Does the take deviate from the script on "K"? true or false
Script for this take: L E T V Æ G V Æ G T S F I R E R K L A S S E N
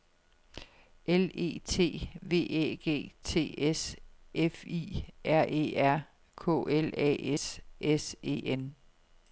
false